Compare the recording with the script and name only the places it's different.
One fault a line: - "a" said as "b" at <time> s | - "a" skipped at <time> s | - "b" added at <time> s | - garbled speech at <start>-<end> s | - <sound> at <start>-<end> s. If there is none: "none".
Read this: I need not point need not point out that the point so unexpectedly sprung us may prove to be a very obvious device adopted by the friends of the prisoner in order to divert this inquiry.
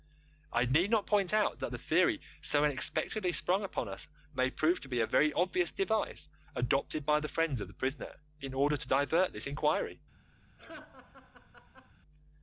- "need not point" skipped at 1.3 s
- "point" said as "theory" at 1.8 s
- "upon" added at 3.6 s
- laugh at 10.6-11.9 s